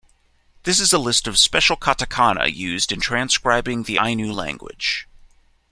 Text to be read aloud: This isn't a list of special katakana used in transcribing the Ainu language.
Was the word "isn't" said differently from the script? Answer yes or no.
yes